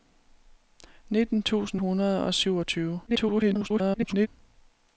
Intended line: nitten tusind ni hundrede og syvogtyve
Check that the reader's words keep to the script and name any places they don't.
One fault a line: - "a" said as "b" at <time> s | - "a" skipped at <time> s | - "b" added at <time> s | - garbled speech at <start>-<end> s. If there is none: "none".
- "ni" skipped at 1.8 s
- garbled speech at 3.1-4.3 s